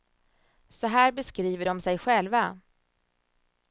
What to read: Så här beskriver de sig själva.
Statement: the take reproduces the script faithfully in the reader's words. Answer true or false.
true